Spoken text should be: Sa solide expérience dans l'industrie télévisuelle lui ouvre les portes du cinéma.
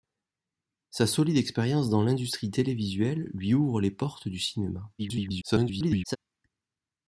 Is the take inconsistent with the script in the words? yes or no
yes